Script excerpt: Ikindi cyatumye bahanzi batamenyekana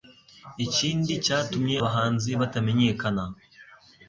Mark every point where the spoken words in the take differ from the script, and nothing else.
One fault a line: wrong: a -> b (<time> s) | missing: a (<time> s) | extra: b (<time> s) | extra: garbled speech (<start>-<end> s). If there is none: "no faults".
no faults